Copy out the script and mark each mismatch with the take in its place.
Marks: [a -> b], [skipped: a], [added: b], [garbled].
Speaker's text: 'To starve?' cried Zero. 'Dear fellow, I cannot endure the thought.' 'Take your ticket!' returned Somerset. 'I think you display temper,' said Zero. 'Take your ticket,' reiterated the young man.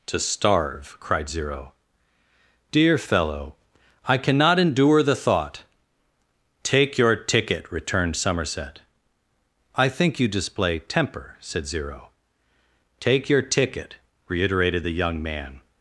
'To starve?' cried Zero. 'Dear fellow, I cannot endure the thought.' 'Take your ticket!' returned Somerset. 'I think you display temper,' said Zero. 'Take your ticket,' reiterated the young man.